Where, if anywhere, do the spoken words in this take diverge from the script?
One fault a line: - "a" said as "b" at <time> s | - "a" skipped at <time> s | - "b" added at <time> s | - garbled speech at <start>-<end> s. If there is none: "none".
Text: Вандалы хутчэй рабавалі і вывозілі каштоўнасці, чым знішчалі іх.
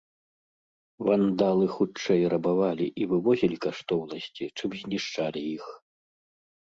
none